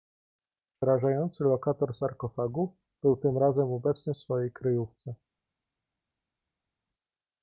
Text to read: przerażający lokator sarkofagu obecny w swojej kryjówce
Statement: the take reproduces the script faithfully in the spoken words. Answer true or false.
false